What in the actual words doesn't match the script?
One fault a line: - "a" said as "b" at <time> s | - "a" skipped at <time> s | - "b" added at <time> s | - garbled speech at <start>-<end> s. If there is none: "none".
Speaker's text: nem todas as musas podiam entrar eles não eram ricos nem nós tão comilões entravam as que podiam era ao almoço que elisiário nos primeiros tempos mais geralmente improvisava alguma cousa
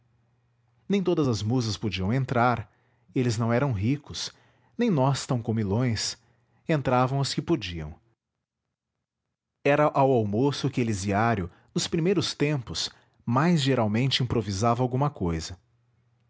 none